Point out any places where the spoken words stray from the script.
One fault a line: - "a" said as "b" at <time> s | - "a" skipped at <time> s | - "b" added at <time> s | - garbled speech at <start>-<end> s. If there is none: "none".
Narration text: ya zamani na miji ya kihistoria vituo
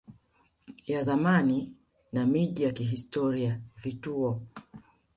none